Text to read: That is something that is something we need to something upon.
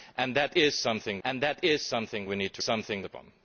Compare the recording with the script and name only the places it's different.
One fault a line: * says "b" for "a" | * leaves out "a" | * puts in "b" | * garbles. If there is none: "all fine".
all fine